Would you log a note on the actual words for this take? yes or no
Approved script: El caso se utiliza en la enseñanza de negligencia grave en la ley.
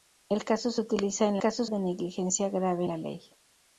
yes